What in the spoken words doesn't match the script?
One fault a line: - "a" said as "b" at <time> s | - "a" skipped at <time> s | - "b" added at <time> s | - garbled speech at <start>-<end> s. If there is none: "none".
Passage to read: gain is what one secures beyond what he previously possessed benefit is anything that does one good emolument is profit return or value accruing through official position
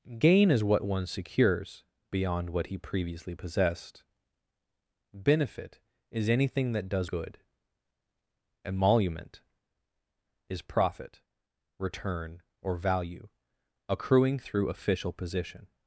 - "one" skipped at 7.1 s